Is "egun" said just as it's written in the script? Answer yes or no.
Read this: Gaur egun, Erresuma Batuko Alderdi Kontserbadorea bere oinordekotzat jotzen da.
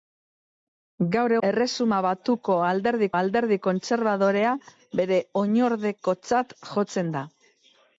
no